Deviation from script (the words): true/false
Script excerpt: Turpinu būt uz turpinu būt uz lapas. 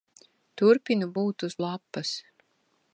true